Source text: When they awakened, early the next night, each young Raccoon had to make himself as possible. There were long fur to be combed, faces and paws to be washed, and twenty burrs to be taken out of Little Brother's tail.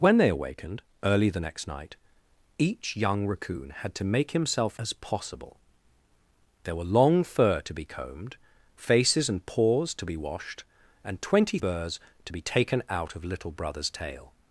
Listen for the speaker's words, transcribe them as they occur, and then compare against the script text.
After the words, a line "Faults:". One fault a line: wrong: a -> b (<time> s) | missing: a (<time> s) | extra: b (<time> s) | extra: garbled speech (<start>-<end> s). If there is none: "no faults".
When they awakened, early the next night, each young Raccoon had to make himself as possible. There were long fur to be combed, faces and paws to be washed, and twenty burrs to be taken out of Little Brother's tail.
Faults:
no faults